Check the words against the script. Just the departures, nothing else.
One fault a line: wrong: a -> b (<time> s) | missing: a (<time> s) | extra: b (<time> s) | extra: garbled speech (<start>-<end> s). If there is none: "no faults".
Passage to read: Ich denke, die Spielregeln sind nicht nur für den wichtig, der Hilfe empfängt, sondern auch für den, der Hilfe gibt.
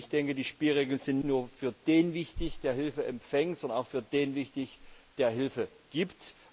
missing: nicht (1.2 s)